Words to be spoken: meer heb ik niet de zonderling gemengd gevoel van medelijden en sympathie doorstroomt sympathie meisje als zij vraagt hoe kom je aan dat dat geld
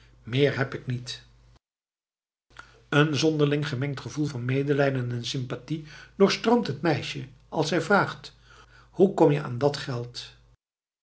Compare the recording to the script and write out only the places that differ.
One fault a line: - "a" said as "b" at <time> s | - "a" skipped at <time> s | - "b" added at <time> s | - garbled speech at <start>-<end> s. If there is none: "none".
- "de" said as "een" at 2.9 s
- "sympathie" said as "het" at 6.7 s
- "dat" skipped at 9.8 s